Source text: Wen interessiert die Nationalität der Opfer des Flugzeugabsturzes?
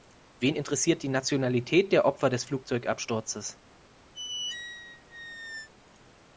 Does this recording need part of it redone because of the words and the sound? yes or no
yes